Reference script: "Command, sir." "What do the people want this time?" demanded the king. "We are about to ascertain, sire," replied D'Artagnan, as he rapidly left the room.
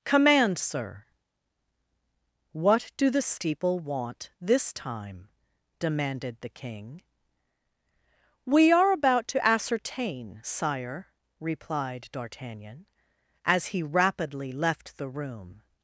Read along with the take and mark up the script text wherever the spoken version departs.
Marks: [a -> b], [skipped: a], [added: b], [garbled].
"Command, sir." "What do the [people -> steeple] want this time?" demanded the king. "We are about to ascertain, sire," replied D'Artagnan, as he rapidly left the room.